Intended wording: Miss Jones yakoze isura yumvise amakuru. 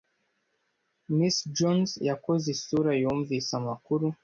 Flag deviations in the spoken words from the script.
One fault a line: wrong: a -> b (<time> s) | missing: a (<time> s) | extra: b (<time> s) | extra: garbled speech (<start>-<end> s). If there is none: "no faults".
no faults